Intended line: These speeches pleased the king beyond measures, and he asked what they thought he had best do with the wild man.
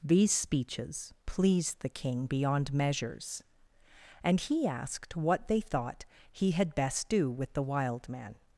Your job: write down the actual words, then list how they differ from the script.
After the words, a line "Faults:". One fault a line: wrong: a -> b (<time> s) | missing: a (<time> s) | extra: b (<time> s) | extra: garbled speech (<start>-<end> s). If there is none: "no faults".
These speeches pleased the king beyond measures, and he asked what they thought he had best do with the wild man.
Faults:
no faults